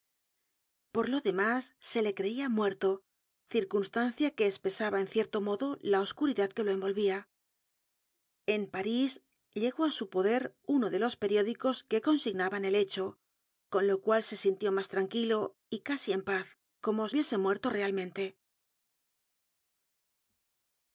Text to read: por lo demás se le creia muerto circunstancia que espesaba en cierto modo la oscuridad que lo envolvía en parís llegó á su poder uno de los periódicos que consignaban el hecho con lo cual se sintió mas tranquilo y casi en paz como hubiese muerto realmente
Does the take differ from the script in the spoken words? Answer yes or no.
no